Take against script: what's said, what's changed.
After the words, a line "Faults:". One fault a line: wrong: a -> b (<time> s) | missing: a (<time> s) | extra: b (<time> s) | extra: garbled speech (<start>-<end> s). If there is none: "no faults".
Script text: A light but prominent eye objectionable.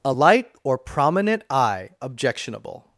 A light or prominent eye objectionable.
Faults:
wrong: but -> or (0.6 s)